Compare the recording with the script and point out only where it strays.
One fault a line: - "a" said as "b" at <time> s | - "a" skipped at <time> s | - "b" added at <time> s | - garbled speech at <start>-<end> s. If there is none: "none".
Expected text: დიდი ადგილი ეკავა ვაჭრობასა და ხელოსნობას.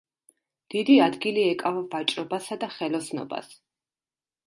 none